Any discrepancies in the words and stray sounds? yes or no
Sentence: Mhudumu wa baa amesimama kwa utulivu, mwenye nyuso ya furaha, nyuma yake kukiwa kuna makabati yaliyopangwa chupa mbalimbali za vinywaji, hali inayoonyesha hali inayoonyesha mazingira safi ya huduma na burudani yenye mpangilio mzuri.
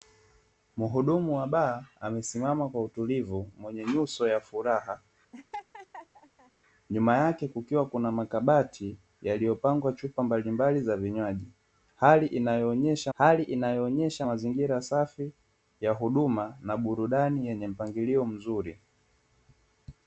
yes